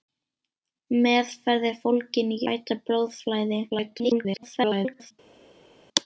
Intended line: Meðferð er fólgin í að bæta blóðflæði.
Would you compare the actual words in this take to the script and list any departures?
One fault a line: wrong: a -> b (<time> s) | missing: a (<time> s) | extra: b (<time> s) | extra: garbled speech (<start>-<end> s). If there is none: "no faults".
missing: að (2.4 s)
extra: garbled speech (3.7-5.1 s)